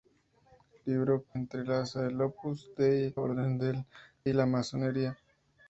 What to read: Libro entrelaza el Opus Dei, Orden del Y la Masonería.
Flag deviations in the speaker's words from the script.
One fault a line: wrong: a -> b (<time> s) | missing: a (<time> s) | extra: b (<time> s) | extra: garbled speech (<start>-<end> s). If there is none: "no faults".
no faults